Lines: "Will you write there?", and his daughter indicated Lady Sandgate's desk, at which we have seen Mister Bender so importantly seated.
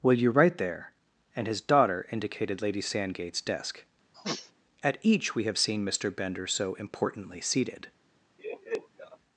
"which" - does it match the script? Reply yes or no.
no